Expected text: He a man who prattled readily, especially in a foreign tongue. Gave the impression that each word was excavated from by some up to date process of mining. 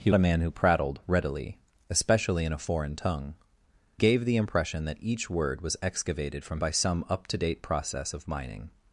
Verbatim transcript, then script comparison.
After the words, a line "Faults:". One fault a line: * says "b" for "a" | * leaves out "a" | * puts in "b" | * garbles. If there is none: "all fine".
He a man who prattled readily, especially in a foreign tongue. Gave the impression that each word was excavated from by some up to date process of mining.
Faults:
all fine